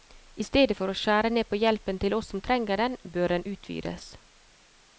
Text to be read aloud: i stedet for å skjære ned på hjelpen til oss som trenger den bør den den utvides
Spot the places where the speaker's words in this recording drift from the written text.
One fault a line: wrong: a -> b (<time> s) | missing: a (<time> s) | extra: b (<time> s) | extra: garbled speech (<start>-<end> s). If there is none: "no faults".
missing: den (3.5 s)